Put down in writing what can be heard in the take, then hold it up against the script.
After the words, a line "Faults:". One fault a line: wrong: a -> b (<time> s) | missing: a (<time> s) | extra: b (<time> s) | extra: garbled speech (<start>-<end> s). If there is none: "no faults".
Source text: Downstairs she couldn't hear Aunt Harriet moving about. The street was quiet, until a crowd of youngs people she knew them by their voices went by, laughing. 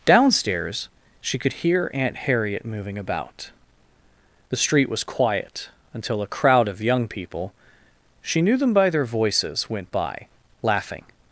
Downstairs she could hear Aunt Harriet moving about. The street was quiet, until a crowd of young people she knew them by their voices went by, laughing.
Faults:
wrong: couldn't -> could (1.4 s)
wrong: youngs -> young (6.8 s)